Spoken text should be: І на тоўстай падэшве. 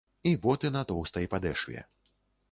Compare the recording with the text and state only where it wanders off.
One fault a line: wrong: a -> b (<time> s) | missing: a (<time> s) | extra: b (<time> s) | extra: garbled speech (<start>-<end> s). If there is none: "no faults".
extra: боты (0.5 s)